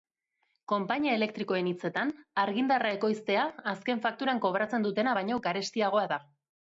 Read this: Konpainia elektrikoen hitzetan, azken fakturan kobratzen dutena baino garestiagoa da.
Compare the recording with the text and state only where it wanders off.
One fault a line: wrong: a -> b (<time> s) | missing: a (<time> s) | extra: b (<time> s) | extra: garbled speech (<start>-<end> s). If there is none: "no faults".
extra: argindarra ekoiztea (2.5 s)